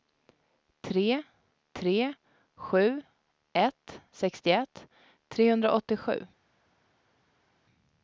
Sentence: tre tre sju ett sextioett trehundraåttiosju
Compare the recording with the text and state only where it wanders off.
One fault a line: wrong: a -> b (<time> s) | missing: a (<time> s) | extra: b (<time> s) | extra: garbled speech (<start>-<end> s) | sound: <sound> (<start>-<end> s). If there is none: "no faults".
no faults